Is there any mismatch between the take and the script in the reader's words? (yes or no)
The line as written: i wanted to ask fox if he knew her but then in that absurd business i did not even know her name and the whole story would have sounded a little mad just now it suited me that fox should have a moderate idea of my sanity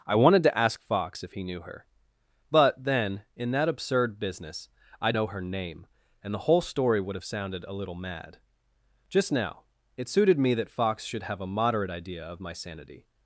yes